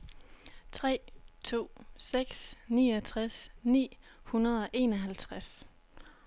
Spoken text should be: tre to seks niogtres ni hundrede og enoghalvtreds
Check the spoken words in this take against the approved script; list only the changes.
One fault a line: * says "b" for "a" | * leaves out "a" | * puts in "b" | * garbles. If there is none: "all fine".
all fine